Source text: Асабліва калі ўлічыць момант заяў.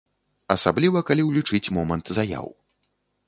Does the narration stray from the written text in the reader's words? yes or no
no